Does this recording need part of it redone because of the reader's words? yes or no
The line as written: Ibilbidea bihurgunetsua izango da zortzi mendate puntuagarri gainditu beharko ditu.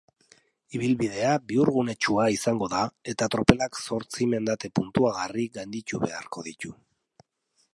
yes